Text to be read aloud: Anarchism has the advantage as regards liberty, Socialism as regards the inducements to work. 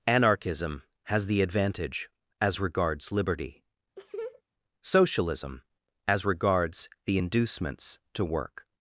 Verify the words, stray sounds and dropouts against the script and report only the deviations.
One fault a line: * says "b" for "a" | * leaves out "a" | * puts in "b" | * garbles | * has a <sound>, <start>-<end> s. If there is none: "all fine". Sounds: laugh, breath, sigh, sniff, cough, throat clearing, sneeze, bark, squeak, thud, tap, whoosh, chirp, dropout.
* has a laugh, 4.0-4.4 s